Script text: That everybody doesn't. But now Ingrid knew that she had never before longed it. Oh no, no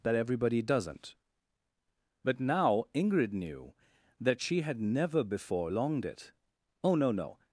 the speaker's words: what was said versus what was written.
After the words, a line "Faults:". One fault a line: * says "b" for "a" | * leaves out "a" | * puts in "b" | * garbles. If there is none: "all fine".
That everybody doesn't. But now Ingrid knew that she had never before longed it. Oh no, no
Faults:
all fine